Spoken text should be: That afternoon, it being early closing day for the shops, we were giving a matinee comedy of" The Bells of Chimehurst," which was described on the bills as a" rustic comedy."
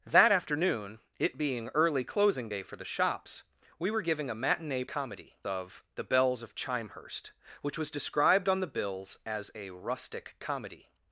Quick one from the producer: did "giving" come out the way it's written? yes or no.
yes